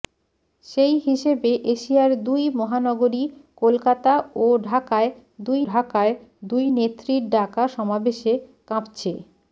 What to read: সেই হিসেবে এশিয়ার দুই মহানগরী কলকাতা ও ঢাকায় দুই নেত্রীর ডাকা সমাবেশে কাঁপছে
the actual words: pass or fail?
fail